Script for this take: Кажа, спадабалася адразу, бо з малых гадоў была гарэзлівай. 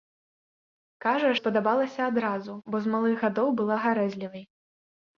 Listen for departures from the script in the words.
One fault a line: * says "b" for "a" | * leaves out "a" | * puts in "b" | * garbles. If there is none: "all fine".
all fine